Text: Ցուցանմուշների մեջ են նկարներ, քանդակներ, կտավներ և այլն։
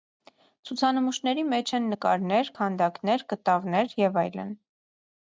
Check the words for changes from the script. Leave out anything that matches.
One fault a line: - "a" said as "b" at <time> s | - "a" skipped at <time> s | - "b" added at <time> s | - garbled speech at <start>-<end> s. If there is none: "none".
none